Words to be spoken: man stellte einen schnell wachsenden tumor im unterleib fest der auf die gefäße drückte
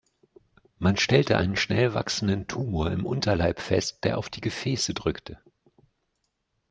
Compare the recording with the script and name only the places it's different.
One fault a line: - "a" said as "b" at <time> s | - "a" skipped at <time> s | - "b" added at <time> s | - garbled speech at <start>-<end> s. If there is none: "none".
none